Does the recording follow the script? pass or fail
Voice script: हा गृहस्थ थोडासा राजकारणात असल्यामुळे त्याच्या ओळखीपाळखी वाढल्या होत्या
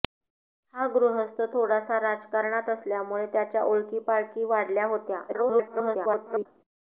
fail